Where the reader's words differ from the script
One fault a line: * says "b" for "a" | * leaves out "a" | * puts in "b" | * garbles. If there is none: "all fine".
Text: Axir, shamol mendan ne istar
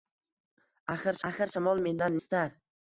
* puts in "axir"
* leaves out "ne"